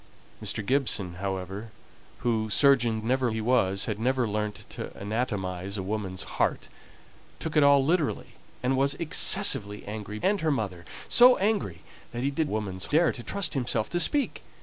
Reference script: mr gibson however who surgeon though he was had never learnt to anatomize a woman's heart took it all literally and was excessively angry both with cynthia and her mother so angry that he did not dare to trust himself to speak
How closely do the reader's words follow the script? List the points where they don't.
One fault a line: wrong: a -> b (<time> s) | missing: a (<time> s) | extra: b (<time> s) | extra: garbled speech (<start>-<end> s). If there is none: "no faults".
wrong: though -> never (3.0 s)
missing: both with cynthia (10.2 s)
wrong: not -> woman's (12.5 s)